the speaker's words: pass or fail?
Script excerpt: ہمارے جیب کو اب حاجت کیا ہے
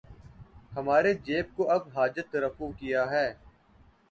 fail